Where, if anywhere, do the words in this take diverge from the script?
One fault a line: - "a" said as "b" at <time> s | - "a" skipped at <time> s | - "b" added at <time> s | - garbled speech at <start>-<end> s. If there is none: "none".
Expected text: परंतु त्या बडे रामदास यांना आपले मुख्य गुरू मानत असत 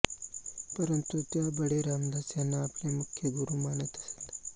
none